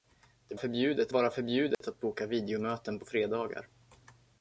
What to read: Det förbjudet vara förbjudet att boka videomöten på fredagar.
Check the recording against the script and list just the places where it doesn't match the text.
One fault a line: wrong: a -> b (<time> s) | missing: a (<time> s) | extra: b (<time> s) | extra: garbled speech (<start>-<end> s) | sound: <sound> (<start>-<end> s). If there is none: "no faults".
sound: dropout (1.7-1.8 s)